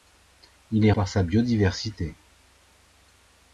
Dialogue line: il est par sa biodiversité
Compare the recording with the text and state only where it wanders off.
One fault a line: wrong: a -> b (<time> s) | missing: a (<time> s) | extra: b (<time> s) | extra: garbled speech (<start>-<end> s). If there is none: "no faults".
no faults